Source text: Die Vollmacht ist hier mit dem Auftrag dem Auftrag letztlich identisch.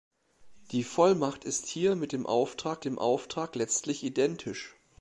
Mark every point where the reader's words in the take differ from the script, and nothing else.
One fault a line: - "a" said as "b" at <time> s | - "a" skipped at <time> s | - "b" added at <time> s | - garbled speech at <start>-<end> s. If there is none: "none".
none